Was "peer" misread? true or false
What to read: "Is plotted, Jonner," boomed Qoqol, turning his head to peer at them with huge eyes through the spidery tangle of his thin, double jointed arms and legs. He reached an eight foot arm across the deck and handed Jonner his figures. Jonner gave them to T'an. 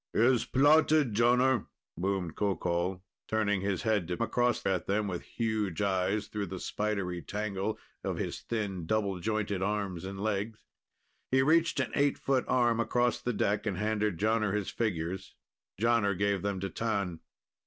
true